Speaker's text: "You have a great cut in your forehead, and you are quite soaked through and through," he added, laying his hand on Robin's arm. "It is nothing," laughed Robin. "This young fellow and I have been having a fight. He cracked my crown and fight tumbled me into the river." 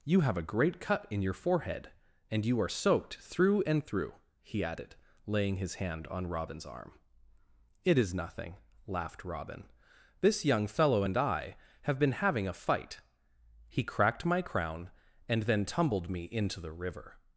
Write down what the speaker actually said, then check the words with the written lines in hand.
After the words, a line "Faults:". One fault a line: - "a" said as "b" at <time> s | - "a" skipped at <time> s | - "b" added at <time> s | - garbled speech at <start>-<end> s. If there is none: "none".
"You have a great cut in your forehead, and you are soaked through and through," he added, laying his hand on Robin's arm. "It is nothing," laughed Robin. "This young fellow and I have been having a fight. He cracked my crown and then tumbled me into the river."
Faults:
- "quite" skipped at 2.7 s
- "fight" said as "then" at 15.4 s